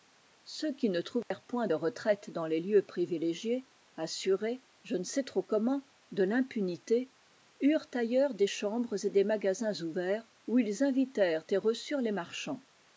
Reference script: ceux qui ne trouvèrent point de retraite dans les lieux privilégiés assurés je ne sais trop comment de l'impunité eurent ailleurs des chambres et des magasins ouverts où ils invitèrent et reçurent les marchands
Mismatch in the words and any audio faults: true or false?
true